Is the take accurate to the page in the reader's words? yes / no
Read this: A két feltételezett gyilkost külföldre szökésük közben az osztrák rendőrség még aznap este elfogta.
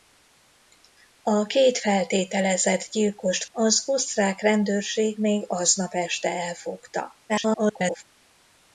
no